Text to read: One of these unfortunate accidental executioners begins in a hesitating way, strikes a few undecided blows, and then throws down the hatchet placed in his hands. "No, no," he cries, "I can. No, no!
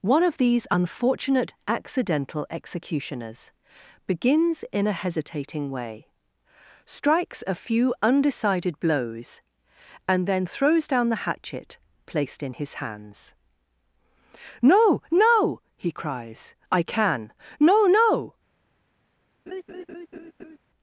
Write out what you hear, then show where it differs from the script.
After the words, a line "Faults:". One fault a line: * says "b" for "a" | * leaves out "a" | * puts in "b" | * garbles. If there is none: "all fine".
One of these unfortunate accidental executioners begins in a hesitating way, strikes a few undecided blows, and then throws down the hatchet placed in his hands. "No, no," he cries, "I can. No, no!
Faults:
all fine